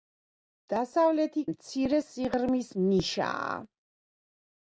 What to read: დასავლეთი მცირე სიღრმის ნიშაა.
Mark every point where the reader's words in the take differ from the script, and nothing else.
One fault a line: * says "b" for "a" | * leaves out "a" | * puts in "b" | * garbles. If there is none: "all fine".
all fine